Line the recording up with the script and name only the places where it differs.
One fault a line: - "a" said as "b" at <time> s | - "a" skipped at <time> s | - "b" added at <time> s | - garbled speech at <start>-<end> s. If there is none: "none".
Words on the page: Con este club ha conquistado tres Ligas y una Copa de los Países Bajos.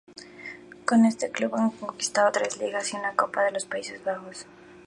none